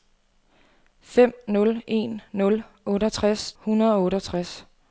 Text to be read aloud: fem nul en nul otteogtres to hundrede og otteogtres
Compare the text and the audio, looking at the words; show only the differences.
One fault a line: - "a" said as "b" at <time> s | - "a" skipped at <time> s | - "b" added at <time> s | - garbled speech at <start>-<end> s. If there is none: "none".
- "to" skipped at 3.5 s